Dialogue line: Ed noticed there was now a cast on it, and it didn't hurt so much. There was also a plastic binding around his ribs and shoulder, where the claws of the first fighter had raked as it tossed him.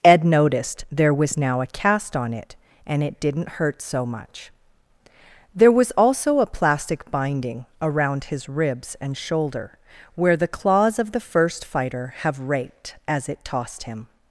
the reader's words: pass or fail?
fail